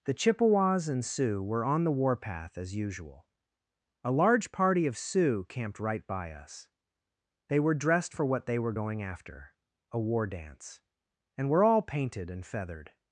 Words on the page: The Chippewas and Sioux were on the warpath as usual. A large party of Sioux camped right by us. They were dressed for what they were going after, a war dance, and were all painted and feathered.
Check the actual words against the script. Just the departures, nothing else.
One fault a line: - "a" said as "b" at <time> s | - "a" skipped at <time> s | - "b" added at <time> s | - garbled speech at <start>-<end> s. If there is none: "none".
none